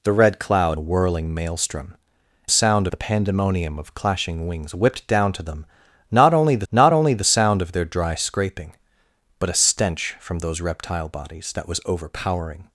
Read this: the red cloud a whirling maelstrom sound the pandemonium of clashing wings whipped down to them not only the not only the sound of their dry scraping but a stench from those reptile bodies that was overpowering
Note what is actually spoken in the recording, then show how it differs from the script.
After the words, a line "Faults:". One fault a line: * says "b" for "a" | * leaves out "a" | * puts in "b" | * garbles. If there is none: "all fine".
the red cloud a whirling maelstrom sound the pandemonium of clashing wings whipped down to them not only the not only the sound of their dry scraping but a stench from those reptile bodies that was overpowering
Faults:
all fine